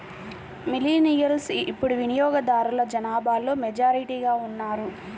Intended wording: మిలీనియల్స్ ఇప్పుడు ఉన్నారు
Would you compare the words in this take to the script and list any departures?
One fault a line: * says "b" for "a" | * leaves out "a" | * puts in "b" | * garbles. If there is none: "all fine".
* puts in "వినియోగదారుల జనాభాలో మెజారిటీగా"